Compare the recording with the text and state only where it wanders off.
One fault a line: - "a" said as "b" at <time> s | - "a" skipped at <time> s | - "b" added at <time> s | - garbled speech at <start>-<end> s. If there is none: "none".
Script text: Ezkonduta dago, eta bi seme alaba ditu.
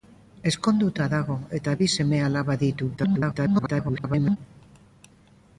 - garbled speech at 3.0-4.4 s